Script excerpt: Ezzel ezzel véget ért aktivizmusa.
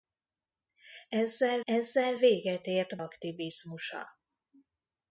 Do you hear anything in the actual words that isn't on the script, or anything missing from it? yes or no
no